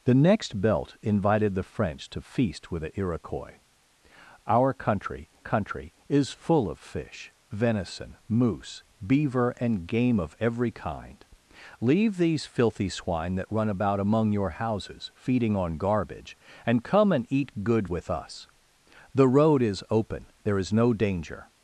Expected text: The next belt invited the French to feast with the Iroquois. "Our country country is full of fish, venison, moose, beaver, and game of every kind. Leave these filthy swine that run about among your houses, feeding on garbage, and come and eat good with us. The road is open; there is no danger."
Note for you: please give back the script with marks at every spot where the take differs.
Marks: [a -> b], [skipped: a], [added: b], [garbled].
The next belt invited the French to feast with the Iroquois. "Our country country is full of fish, venison, moose, beaver, and game of every kind. Leave these filthy swine that run about among your houses, feeding on garbage, and come and eat good with us. The road is open; there is no danger."